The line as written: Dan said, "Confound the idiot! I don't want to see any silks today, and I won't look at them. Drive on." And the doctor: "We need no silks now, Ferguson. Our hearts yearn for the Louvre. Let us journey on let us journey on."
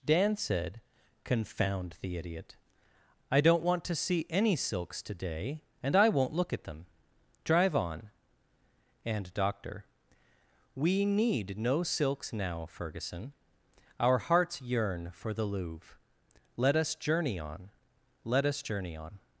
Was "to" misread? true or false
false